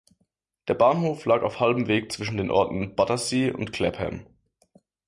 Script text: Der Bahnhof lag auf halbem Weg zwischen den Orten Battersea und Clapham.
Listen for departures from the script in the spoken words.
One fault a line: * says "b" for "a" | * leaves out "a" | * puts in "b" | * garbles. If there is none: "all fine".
all fine